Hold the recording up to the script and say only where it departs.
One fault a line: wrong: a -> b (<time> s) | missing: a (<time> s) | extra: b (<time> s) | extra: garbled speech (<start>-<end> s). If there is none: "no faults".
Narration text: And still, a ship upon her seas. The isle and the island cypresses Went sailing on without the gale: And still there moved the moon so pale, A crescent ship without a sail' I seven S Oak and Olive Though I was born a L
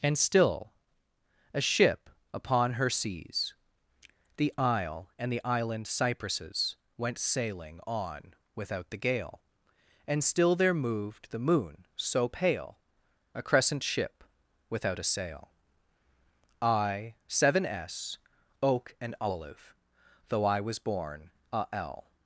no faults